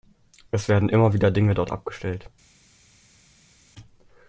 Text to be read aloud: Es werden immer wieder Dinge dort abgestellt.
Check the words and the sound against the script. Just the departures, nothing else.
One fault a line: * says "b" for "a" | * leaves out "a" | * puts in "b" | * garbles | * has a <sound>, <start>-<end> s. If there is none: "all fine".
all fine